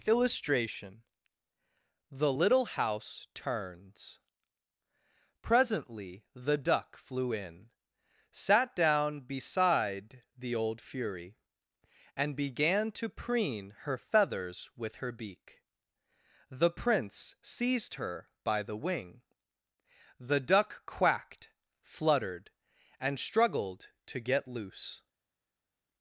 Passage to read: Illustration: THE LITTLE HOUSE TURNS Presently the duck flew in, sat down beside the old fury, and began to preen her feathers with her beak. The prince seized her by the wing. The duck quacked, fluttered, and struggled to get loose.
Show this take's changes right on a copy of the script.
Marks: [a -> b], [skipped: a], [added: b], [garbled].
Illustration: THE LITTLE HOUSE TURNS Presently the duck flew in, sat down beside the old fury, and began to preen her feathers with her beak. The prince seized her by the wing. The duck quacked, fluttered, and struggled to get loose.